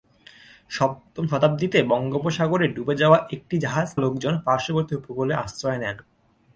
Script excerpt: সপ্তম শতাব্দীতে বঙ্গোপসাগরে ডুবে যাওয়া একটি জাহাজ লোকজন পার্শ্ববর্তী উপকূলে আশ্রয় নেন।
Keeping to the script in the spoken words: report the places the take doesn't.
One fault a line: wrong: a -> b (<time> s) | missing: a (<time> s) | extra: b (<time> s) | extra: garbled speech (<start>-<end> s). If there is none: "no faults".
no faults